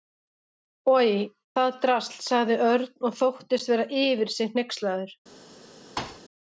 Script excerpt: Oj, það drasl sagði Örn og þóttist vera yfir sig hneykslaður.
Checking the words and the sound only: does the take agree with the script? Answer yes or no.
no